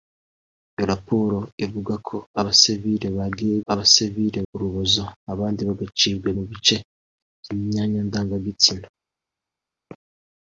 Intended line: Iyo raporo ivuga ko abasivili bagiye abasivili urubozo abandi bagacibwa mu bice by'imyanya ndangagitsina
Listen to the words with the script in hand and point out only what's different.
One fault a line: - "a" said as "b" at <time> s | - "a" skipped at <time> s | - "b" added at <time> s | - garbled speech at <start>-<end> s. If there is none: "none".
none